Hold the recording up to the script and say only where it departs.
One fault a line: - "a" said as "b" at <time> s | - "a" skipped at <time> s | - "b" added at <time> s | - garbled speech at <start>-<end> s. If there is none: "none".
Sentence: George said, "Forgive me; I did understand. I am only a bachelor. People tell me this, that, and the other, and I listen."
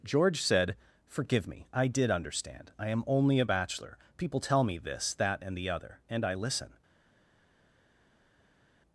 none